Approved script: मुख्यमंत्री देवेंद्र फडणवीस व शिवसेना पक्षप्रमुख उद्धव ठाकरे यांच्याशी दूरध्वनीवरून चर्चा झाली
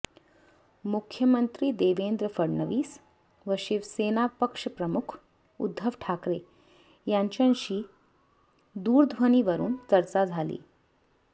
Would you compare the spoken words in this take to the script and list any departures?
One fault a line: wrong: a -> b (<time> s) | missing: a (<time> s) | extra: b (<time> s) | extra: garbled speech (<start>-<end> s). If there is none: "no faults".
no faults